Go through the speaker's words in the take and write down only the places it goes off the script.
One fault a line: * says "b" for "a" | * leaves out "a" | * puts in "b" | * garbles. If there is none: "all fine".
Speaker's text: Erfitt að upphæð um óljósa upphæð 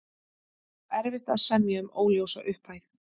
* says "semja" for "upphæð"